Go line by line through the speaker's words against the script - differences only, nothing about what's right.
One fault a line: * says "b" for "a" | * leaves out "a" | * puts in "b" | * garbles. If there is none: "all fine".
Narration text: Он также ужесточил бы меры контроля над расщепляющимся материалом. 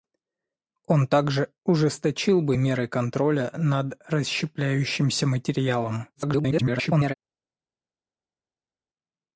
* garbles